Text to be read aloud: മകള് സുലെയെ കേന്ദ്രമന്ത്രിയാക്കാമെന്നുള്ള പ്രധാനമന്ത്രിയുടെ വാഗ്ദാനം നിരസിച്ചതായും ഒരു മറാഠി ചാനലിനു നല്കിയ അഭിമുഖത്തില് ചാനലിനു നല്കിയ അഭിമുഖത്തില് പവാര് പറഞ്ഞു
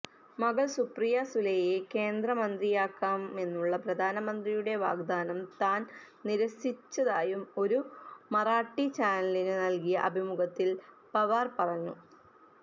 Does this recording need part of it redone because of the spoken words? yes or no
yes